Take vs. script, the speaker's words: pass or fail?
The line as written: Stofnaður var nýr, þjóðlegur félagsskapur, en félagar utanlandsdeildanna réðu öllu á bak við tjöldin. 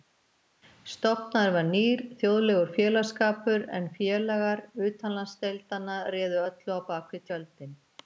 pass